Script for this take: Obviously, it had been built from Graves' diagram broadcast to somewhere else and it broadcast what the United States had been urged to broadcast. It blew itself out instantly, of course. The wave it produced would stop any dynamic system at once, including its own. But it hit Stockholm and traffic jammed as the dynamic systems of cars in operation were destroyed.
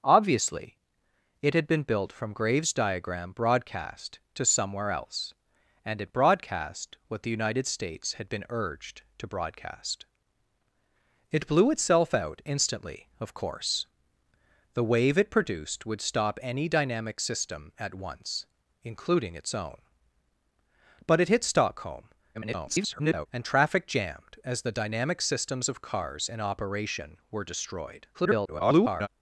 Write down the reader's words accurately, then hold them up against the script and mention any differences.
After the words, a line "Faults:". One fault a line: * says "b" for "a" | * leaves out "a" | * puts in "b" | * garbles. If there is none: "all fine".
Obviously, it had been built from Graves' diagram broadcast to somewhere else and it broadcast what the United States had been urged to broadcast. It blew itself out instantly, of course. The wave it produced would stop any dynamic system at once, including its own. But it hit Stockholm [garbled] and traffic jammed as the dynamic systems of cars in operation were destroyed. [garbled]
Faults:
* garbles
* garbles